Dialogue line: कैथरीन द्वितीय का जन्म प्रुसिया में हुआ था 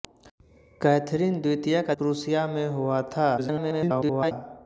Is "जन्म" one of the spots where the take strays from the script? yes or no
yes